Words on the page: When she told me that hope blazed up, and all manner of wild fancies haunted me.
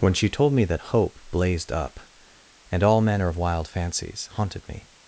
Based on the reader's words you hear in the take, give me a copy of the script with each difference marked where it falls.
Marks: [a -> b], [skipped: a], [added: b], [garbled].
When she told me that hope blazed up, and all manner of wild fancies haunted me.